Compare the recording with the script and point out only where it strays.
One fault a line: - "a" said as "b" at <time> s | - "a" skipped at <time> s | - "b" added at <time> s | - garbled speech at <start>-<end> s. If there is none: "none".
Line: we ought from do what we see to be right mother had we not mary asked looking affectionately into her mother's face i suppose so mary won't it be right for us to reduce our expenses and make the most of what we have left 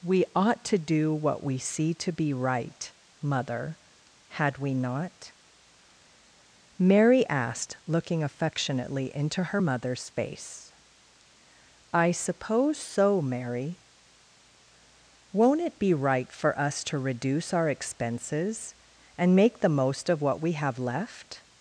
- "from" said as "to" at 0.7 s